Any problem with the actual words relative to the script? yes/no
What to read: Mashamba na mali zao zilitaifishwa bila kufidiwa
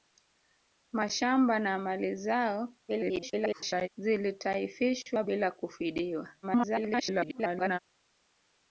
yes